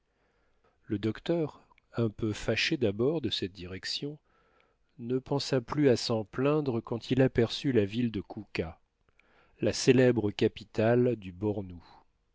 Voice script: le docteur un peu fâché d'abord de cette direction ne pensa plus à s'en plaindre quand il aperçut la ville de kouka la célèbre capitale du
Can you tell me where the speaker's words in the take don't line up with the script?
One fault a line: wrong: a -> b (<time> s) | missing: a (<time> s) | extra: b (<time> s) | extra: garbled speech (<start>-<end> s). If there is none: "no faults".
no faults